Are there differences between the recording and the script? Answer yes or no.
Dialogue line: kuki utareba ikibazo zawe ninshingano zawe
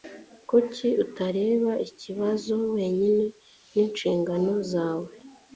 yes